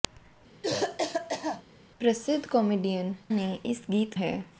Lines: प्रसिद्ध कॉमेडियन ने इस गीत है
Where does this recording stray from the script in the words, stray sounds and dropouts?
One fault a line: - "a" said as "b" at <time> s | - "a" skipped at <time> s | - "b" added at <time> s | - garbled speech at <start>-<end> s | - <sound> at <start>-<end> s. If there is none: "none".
- cough at 0.6-1.6 s